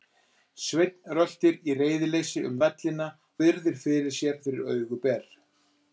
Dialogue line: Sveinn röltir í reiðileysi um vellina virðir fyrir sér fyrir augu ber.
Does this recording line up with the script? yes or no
yes